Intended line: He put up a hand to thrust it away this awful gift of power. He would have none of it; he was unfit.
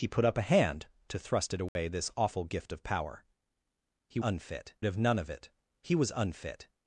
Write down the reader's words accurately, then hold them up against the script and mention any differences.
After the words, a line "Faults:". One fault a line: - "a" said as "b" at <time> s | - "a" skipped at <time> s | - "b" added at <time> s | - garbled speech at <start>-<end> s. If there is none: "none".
He put up a hand to thrust it away this awful gift of power. He unfit have none of it; he was unfit.
Faults:
- "would" said as "unfit" at 4.2 s